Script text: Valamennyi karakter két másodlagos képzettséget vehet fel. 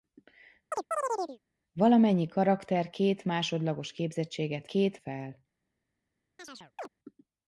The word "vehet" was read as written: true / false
false